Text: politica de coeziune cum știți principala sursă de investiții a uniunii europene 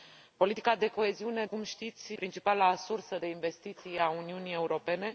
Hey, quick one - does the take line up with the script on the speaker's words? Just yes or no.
yes